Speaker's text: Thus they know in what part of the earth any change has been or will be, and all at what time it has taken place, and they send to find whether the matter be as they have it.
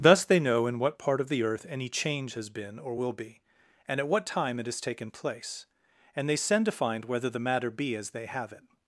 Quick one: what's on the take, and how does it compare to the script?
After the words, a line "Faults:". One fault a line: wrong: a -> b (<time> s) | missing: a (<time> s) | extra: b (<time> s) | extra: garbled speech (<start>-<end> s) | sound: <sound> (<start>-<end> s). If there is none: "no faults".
Thus they know in what part of the earth any change has been or will be, and at what time it has taken place, and they send to find whether the matter be as they have it.
Faults:
missing: all (4.0 s)